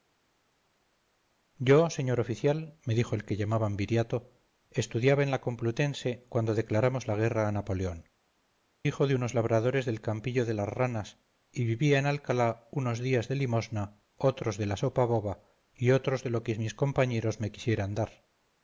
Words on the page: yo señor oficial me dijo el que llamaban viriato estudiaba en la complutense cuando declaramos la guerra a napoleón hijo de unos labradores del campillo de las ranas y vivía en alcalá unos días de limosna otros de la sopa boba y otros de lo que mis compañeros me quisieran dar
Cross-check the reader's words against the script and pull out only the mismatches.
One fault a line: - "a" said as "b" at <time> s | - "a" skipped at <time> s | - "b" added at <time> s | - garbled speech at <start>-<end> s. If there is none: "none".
none